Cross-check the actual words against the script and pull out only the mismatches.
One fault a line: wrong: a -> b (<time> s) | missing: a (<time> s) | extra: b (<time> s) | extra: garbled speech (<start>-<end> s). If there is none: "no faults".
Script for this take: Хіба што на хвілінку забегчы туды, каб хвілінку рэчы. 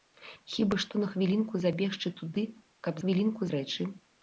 no faults